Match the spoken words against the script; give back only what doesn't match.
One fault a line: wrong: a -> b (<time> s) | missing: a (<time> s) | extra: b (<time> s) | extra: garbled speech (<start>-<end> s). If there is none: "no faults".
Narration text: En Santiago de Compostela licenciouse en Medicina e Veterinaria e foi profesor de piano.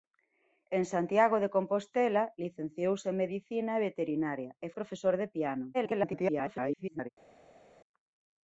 missing: foi (4.7 s)
extra: garbled speech (5.7-7.1 s)